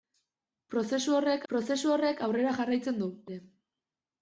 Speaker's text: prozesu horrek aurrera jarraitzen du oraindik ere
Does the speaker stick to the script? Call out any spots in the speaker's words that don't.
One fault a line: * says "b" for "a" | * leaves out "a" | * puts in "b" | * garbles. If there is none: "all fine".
* puts in "prozesu horrek"
* leaves out "oraindik"